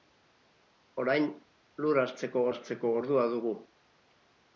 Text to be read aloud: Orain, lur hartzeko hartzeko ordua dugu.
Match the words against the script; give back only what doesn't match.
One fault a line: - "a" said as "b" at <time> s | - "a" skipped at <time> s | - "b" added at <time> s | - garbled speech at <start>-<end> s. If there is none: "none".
none